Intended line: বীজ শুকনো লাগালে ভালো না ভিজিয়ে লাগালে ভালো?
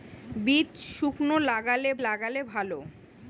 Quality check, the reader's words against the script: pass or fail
fail